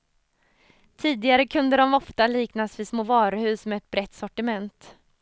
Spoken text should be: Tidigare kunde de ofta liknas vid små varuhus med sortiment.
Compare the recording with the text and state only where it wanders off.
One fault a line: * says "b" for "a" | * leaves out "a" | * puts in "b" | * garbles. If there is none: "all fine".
* puts in "ett brett"